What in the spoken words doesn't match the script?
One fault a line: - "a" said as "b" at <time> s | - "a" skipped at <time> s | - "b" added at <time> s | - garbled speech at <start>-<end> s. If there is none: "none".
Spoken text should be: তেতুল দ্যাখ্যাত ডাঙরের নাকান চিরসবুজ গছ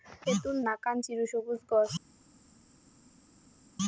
- "দ্যাখ্যাত ডাঙরের" skipped at 0.6 s